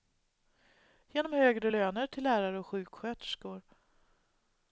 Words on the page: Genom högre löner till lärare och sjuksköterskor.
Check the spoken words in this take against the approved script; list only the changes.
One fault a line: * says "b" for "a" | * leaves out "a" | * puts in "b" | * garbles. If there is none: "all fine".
all fine